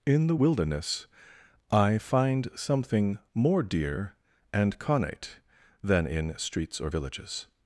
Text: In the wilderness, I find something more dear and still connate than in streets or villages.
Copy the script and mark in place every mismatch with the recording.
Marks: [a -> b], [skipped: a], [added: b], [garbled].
In the wilderness, I find something more dear and [skipped: still] connate than in streets or villages.